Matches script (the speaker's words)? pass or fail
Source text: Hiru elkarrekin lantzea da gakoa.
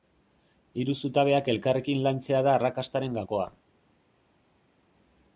fail